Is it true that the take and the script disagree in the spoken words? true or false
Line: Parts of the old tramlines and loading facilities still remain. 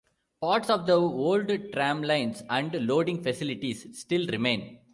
false